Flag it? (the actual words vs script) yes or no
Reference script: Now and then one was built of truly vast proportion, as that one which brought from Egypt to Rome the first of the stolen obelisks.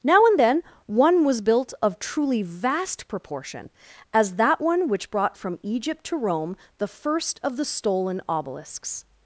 no